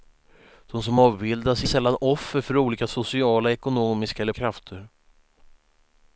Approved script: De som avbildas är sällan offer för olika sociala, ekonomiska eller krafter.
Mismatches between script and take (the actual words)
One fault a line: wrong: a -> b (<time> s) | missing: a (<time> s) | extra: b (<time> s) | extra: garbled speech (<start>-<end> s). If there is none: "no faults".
no faults